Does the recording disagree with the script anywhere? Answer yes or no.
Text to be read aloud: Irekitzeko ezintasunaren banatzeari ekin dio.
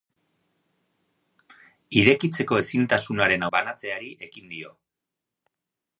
no